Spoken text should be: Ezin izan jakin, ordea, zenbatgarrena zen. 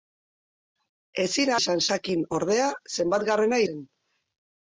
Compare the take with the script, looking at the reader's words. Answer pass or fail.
pass